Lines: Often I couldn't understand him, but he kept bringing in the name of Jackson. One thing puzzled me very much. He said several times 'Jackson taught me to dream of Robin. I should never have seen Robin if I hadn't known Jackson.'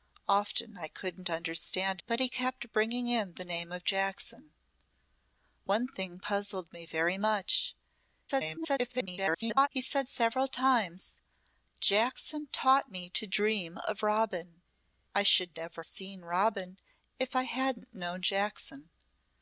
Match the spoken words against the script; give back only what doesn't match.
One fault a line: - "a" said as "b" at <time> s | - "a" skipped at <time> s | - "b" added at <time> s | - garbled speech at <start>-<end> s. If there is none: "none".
- "him" skipped at 2.0 s
- garbled speech at 8.3-9.7 s
- "have" skipped at 15.8 s